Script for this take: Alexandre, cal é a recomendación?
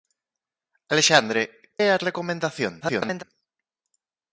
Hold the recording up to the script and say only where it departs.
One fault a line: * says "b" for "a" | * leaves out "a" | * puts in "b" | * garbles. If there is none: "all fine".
* leaves out "cal"
* garbles